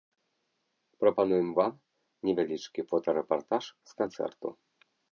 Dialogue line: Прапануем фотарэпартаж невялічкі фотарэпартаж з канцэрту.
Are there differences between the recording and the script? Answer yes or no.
yes